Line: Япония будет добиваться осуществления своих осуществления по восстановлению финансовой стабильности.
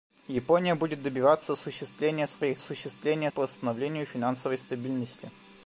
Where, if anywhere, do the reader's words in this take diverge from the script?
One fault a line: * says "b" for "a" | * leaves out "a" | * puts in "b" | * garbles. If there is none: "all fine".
all fine